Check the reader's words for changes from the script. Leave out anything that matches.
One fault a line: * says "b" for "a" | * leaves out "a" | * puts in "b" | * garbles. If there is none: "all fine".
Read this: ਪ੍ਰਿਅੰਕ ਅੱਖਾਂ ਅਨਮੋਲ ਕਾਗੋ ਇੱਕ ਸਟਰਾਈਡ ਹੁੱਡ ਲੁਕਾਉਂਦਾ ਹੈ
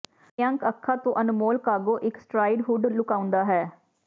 * puts in "ਤੋਂ"